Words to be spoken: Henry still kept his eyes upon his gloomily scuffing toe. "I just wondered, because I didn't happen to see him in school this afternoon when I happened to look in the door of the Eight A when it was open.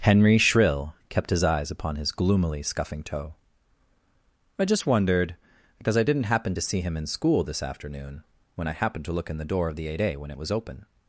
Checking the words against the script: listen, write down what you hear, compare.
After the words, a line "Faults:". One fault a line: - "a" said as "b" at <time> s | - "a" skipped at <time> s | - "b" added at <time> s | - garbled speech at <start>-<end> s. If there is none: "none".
Henry shrill kept his eyes upon his gloomily scuffing toe. "I just wondered, because I didn't happen to see him in school this afternoon when I happened to look in the door of the Eight A when it was open.
Faults:
- "still" said as "shrill" at 0.4 s